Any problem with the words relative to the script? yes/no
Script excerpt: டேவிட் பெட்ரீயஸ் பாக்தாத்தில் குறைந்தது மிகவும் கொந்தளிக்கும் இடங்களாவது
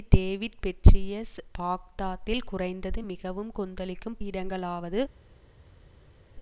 no